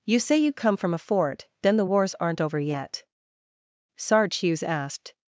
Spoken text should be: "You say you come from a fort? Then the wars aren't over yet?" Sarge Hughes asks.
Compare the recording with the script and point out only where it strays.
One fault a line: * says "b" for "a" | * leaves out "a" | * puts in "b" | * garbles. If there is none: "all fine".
* says "asked" for "asks"